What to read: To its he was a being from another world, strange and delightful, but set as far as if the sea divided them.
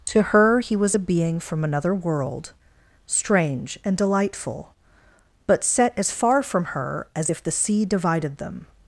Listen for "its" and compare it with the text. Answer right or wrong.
wrong